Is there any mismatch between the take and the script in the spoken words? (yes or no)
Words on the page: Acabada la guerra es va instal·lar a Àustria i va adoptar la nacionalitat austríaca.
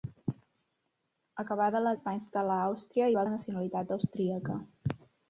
yes